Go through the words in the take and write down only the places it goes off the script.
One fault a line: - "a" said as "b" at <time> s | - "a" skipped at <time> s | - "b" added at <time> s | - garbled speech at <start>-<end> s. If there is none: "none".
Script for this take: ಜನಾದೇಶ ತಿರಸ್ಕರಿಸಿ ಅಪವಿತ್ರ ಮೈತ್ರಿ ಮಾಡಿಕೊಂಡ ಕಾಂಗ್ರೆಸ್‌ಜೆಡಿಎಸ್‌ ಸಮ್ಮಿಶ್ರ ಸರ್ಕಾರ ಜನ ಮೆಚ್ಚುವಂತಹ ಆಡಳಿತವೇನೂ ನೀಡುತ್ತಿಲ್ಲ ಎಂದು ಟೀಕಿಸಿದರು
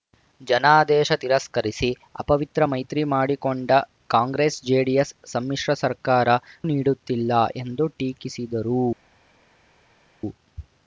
- "ಜನ ಮೆಚ್ಚುವಂತಹ ಆಡಳಿತವೇನೂ" skipped at 6.4 s